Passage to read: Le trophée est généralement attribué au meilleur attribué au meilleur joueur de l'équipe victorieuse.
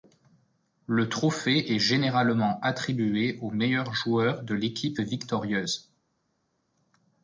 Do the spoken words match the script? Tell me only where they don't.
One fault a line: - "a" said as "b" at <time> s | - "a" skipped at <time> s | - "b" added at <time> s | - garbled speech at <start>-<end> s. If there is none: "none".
- "attribué au meilleur" skipped at 3.9 s